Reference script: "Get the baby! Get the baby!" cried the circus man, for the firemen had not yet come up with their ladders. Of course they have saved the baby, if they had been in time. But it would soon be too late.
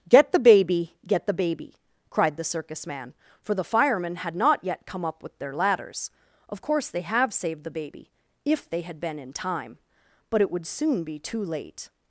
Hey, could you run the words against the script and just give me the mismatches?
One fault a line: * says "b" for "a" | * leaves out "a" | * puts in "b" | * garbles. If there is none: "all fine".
all fine